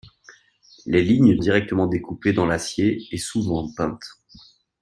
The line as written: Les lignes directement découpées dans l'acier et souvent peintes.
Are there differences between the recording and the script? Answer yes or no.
no